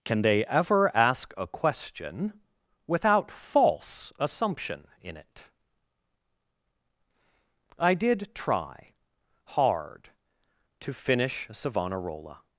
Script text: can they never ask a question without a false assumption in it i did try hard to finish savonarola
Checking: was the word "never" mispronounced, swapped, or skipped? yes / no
yes